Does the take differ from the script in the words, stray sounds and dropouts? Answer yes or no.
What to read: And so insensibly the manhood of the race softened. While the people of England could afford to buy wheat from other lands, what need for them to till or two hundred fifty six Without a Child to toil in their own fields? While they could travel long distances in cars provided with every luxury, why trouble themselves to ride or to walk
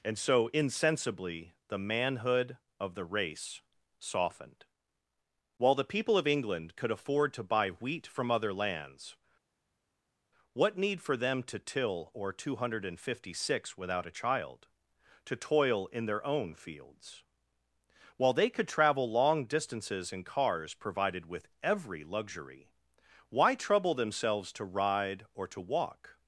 no